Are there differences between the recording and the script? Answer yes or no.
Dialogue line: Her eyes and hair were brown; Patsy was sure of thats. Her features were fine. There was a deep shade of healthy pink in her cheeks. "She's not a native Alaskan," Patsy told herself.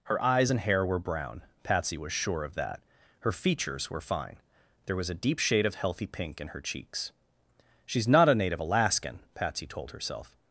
yes